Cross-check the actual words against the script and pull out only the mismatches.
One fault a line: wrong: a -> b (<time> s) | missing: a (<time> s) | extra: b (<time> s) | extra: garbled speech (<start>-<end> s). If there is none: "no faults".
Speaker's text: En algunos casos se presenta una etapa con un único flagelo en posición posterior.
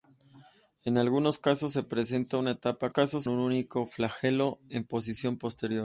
wrong: con -> casos (2.9 s)